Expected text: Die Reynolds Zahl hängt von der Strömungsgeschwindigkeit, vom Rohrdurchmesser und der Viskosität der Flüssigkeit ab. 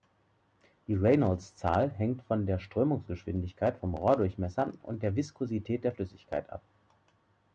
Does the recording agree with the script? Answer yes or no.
yes